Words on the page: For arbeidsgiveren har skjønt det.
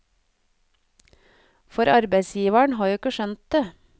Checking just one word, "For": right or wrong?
right